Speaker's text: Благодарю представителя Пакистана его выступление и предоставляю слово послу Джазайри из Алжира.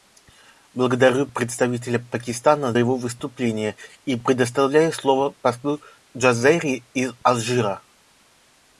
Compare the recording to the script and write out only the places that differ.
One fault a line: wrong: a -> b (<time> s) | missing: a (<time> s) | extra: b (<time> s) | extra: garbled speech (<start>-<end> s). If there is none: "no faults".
no faults